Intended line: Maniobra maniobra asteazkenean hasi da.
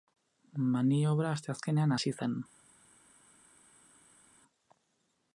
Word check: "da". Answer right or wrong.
wrong